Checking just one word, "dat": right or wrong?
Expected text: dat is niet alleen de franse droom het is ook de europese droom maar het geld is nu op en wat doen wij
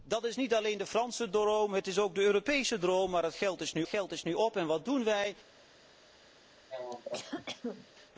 right